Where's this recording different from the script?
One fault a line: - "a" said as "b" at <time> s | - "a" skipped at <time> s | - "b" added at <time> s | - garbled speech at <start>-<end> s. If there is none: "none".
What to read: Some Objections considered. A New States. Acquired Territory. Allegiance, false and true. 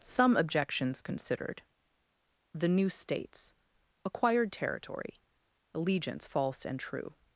- "A" said as "The" at 2.5 s